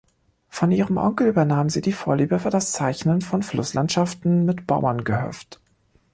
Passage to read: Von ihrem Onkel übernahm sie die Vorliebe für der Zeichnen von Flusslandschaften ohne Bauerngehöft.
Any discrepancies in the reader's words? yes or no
yes